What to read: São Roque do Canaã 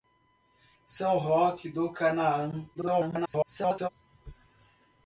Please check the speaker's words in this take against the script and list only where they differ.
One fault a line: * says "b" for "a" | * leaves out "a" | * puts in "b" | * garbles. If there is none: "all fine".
* garbles